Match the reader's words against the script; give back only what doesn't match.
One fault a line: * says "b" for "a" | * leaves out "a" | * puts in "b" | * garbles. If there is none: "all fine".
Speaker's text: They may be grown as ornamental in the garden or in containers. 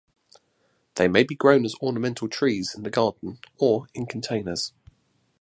* puts in "trees"